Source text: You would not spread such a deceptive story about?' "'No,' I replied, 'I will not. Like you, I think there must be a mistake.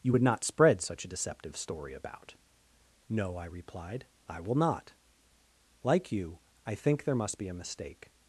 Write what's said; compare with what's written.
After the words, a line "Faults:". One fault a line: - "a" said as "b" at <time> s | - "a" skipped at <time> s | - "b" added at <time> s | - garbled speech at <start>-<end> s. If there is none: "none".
You would not spread such a deceptive story about?' "'No,' I replied, 'I will not. Like you, I think there must be a mistake.
Faults:
none